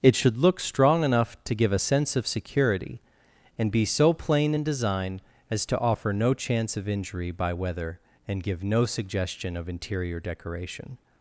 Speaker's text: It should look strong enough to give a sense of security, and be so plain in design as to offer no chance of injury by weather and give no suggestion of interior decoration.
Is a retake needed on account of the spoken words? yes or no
no